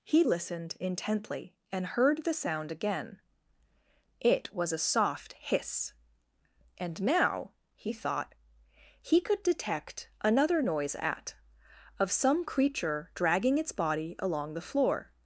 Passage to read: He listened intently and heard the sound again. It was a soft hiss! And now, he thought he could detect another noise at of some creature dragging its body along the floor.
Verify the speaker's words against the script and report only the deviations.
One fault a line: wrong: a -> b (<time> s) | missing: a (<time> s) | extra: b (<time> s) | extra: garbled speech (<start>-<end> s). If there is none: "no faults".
no faults